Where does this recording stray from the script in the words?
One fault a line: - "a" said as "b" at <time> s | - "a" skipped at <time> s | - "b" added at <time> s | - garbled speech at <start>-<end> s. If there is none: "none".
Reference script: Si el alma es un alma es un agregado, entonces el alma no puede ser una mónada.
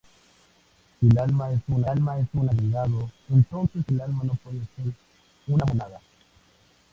none